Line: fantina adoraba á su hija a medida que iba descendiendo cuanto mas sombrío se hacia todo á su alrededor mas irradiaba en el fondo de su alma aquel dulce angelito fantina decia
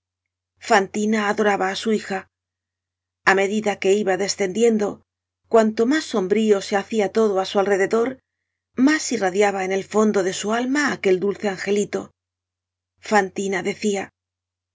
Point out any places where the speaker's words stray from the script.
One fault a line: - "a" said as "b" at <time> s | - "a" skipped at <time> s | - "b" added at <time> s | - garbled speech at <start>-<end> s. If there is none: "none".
none